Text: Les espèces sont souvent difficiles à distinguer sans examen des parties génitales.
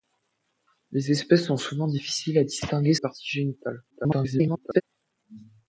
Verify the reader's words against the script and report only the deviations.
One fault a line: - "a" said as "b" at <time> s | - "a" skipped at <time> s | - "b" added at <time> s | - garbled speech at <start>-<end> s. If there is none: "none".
- "sans examen des" skipped at 3.0 s
- garbled speech at 3.9-4.8 s